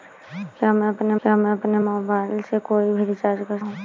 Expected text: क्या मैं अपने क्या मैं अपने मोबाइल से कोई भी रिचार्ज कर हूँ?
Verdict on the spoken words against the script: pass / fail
pass